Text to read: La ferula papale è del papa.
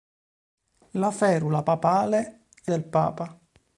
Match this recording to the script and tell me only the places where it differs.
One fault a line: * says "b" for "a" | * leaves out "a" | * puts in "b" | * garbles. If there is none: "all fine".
all fine